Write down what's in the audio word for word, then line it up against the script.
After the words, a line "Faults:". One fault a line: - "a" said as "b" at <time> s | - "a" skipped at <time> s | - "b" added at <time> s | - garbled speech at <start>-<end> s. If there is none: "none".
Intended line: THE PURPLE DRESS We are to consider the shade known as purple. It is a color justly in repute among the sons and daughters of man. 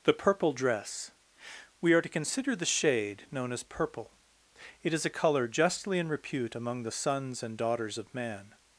THE PURPLE DRESS We are to consider the shade known as purple. It is a color justly in repute among the sons and daughters of man.
Faults:
none